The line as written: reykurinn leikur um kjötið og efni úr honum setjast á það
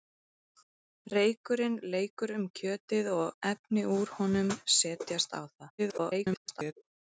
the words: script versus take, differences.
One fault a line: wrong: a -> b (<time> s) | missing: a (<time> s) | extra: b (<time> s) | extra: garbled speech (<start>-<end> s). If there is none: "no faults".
extra: garbled speech (5.8-6.7 s)